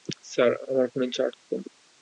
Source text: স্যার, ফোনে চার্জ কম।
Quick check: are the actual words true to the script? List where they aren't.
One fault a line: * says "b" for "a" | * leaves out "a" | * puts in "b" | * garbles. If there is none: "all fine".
* puts in "আমার"